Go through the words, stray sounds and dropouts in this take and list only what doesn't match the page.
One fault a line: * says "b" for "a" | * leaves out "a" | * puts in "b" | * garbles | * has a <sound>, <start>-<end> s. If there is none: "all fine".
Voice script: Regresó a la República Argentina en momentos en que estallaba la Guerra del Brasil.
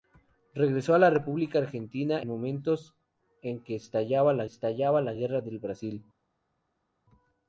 * leaves out "en"
* puts in "estallaba la"